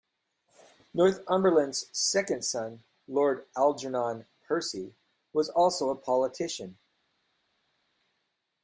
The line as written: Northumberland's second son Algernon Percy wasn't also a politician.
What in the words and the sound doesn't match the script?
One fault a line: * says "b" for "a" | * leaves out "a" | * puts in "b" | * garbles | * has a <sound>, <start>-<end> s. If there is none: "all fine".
* puts in "Lord"
* says "was" for "wasn't"